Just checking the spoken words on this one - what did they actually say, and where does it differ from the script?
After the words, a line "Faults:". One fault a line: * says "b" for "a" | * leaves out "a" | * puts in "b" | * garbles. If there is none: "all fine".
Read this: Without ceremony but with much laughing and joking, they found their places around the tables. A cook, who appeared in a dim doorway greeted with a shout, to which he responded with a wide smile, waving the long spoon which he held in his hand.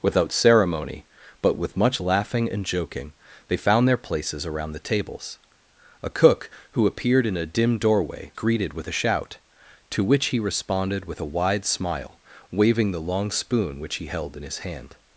Without ceremony but with much laughing and joking, they found their places around the tables. A cook, who appeared in a dim doorway greeted with a shout, to which he responded with a wide smile, waving the long spoon which he held in his hand.
Faults:
all fine